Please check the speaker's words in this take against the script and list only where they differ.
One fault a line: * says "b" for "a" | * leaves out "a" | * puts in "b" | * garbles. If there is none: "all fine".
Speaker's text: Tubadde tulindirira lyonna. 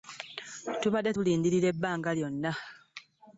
* puts in "ebbanga"